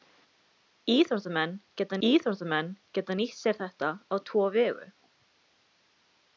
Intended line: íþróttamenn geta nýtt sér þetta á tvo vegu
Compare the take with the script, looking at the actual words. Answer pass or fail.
fail